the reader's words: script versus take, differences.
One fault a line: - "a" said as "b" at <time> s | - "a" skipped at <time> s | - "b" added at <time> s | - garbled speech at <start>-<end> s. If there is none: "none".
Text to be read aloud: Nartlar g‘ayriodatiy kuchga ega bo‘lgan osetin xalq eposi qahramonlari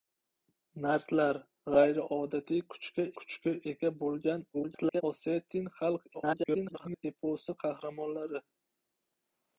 - "kuchga" added at 3.2 s
- garbled speech at 4.5-5.0 s
- garbled speech at 6.1-7.0 s